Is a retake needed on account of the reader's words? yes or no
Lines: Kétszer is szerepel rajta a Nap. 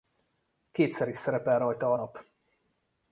no